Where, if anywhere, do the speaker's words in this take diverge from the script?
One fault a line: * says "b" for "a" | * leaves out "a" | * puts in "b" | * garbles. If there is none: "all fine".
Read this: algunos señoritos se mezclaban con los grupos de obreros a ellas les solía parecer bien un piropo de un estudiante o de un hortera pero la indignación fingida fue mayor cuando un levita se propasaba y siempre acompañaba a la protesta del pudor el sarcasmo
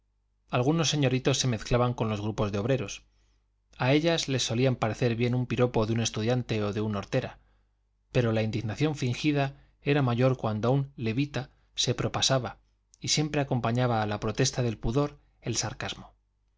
* says "era" for "fue"